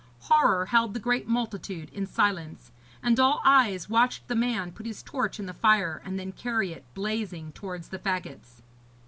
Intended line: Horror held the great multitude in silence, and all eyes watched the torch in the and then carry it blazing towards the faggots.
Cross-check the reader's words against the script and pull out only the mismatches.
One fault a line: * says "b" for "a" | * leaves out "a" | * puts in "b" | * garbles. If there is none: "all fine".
* puts in "man put his"
* puts in "fire"